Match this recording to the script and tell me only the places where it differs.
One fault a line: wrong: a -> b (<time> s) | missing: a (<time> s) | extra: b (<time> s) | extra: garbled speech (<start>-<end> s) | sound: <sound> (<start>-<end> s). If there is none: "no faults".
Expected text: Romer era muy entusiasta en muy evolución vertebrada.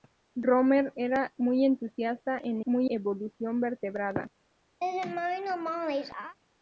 sound: laugh (4.8-6.4 s)